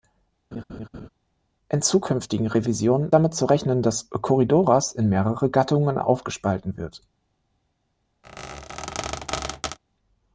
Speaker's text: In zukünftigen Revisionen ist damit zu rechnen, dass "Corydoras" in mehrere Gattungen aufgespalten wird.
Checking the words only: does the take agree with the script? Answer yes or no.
no